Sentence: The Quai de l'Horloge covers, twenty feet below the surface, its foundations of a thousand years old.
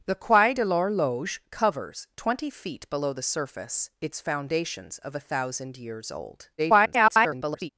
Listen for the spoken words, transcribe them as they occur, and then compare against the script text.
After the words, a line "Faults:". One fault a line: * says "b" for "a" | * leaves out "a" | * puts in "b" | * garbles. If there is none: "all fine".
The Quai de l'Horloge covers, twenty feet below the surface, its foundations of a thousand years old. [garbled]
Faults:
* garbles